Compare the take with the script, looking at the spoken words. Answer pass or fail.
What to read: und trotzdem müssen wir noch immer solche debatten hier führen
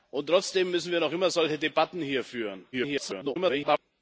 fail